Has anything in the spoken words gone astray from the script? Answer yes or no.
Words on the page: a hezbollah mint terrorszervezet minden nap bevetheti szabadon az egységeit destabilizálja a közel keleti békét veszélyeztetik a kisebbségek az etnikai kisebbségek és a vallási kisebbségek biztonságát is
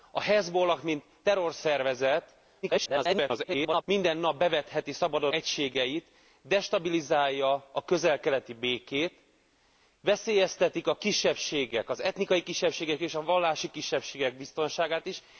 yes